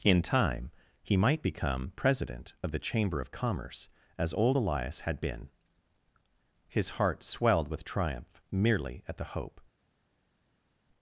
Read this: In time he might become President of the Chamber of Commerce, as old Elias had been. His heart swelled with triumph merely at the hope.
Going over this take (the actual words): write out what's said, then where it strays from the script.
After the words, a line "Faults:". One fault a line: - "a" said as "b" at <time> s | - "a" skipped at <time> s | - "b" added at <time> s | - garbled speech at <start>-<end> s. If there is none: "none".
In time he might become President of the Chamber of Commerce, as old Elias had been. His heart swelled with triumph merely at the hope.
Faults:
none